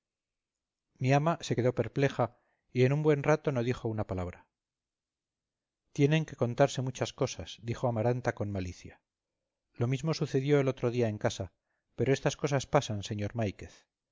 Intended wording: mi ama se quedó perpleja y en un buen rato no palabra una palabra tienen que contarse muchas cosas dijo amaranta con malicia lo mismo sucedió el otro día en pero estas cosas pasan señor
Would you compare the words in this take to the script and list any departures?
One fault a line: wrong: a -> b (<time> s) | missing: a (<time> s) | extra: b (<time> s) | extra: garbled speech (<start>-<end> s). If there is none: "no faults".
wrong: palabra -> dijo (3.6 s)
extra: casa (11.2 s)